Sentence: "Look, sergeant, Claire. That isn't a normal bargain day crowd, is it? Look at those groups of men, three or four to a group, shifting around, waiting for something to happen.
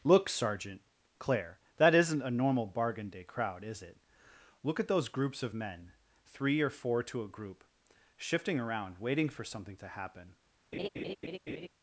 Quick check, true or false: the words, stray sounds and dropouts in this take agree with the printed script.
false